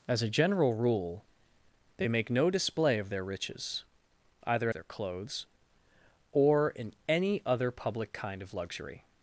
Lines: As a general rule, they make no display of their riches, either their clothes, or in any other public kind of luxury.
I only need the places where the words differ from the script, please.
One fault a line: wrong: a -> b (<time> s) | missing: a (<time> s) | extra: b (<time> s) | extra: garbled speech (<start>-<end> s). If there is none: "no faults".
no faults